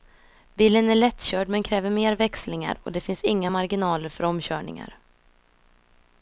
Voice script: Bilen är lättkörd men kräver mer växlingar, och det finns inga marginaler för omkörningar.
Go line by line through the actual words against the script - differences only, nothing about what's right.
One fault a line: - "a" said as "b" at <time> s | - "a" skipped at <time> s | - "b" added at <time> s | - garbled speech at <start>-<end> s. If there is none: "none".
none